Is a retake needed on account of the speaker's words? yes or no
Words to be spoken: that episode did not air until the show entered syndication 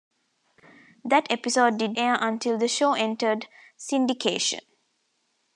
yes